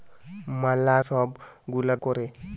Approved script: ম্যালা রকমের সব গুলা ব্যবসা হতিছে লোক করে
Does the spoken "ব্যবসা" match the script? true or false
false